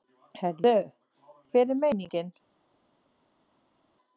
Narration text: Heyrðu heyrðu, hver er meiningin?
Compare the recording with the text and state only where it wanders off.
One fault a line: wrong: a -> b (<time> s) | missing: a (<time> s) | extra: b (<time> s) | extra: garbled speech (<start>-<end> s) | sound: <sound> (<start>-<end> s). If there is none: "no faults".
missing: heyrðu (0.7 s)